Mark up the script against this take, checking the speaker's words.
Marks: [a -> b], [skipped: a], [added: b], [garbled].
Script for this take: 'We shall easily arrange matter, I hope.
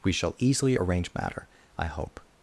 'We shall easily arrange matter, I hope.